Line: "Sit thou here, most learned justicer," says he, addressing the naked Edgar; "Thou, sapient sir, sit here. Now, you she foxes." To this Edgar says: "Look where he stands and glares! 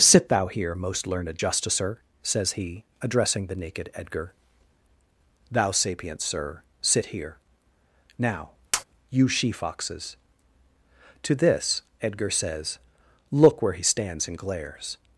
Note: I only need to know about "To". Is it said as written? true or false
true